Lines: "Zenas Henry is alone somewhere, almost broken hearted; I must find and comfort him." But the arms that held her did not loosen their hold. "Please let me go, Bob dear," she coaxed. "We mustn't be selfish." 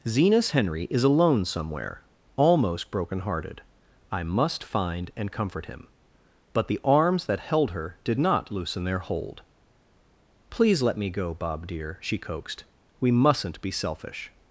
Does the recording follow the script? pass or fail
pass